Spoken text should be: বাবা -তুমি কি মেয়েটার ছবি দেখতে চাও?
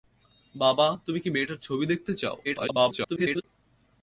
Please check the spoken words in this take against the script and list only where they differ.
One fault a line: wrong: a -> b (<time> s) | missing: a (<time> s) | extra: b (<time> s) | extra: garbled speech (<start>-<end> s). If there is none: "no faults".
extra: garbled speech (2.4-3.4 s)